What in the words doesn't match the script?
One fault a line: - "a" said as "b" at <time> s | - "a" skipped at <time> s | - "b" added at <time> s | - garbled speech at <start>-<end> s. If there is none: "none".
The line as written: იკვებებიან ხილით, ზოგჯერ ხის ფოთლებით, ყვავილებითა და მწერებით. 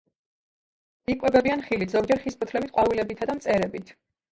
none